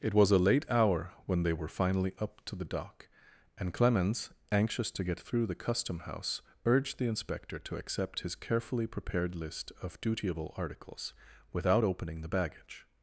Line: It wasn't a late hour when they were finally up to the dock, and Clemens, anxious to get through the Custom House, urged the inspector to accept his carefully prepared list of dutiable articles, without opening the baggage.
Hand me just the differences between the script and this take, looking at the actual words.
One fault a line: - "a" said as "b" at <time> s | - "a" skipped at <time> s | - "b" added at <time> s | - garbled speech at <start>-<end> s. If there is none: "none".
- "wasn't" said as "was" at 0.1 s